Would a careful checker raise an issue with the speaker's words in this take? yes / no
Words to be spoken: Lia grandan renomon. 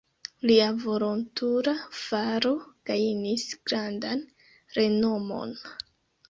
yes